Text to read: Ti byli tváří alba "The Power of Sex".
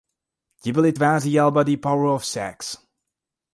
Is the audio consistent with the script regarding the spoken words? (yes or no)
yes